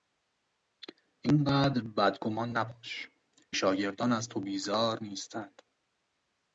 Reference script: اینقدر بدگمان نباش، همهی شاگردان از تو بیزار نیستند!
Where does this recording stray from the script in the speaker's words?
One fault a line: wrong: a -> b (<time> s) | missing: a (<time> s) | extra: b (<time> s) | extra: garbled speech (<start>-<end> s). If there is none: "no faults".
missing: همهی (3.1 s)